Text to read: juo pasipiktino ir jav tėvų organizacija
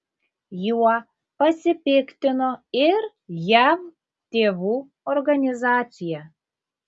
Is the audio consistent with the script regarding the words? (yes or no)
yes